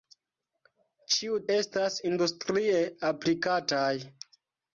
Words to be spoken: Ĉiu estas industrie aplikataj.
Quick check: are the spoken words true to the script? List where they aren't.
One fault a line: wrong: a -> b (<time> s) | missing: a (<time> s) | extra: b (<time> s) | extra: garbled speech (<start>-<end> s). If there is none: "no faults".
no faults